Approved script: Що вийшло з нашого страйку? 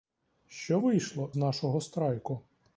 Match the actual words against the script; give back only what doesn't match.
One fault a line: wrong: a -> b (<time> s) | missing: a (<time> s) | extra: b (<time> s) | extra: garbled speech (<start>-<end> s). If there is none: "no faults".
missing: з (1.3 s)